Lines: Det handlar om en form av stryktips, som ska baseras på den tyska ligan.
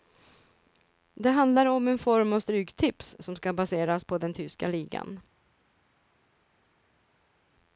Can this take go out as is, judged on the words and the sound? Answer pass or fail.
pass